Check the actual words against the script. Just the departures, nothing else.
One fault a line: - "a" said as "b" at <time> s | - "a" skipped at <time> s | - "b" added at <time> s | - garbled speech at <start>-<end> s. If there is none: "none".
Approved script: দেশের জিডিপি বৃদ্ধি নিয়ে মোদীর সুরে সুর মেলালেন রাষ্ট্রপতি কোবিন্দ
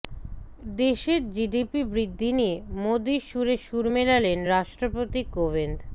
none